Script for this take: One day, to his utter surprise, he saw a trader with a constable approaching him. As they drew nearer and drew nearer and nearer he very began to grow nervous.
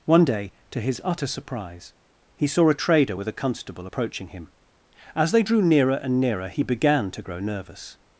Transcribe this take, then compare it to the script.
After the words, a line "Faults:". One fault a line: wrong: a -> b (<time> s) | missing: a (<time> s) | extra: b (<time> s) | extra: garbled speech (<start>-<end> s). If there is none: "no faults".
One day, to his utter surprise, he saw a trader with a constable approaching him. As they drew nearer and nearer he began to grow nervous.
Faults:
missing: drew (6.2 s)
missing: and nearer (6.5 s)
missing: very (6.6 s)